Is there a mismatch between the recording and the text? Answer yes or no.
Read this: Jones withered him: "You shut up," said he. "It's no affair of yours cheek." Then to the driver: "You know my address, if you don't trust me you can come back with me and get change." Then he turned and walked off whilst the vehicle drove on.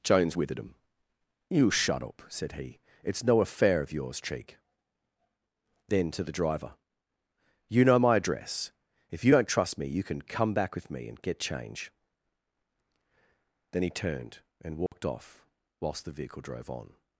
no